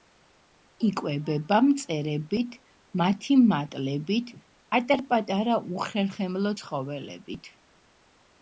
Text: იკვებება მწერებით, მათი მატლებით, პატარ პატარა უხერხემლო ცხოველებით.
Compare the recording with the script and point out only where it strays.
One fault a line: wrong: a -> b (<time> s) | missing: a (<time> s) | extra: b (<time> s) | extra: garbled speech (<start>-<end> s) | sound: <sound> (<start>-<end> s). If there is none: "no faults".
no faults